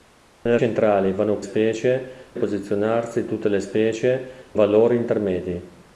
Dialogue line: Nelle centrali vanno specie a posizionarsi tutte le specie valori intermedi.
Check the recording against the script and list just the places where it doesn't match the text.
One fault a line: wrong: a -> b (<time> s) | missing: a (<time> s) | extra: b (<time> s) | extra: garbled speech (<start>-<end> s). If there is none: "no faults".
no faults